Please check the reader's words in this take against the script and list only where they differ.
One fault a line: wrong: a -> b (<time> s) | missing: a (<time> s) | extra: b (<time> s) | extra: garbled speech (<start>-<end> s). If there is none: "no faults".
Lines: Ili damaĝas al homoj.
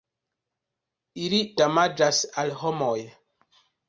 no faults